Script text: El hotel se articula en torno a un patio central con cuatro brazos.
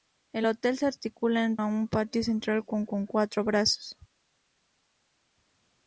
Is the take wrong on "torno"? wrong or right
wrong